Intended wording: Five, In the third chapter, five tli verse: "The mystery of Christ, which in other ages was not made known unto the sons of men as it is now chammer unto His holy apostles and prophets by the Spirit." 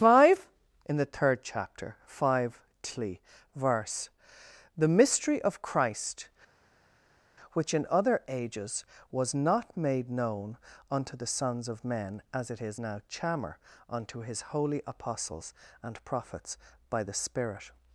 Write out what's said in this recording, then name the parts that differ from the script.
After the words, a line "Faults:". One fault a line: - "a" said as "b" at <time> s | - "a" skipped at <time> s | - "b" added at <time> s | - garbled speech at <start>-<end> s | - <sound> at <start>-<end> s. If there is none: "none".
Five, In the third chapter, five tli verse: "The mystery of Christ, which in other ages was not made known unto the sons of men as it is now chammer unto His holy apostles and prophets by the Spirit."
Faults:
none